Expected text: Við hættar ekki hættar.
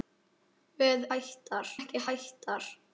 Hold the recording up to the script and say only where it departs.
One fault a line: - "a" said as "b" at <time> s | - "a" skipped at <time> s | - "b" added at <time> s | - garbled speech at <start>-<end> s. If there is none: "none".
none